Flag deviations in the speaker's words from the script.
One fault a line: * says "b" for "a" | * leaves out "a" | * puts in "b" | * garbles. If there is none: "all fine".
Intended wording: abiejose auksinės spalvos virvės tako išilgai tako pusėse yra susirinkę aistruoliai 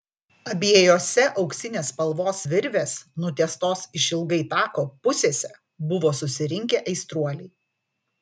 * says "nutiestos" for "tako"
* says "buvo" for "yra"